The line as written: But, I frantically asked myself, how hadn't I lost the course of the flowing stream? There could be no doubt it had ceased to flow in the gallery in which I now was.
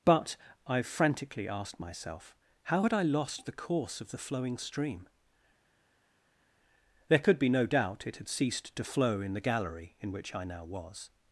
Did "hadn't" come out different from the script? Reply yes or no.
yes